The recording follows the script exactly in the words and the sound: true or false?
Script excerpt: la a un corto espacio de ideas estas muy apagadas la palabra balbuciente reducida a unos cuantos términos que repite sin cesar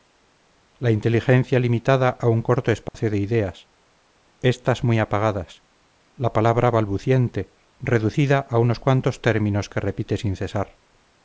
false